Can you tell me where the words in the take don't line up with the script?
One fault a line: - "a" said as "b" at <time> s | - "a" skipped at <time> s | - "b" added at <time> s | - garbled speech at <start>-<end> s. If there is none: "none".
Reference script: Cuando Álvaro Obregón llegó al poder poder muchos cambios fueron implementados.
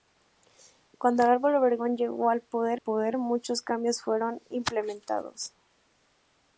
none